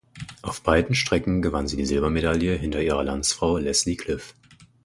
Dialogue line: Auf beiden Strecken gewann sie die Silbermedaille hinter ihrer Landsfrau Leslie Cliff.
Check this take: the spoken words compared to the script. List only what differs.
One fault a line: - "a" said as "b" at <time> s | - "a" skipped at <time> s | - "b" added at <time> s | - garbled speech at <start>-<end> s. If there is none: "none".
none